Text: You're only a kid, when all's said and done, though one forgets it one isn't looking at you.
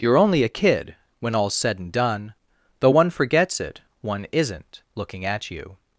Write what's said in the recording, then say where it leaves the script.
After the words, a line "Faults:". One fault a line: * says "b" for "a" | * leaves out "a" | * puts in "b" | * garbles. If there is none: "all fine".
You're only a kid, when all's said and done, though one forgets it one isn't looking at you.
Faults:
all fine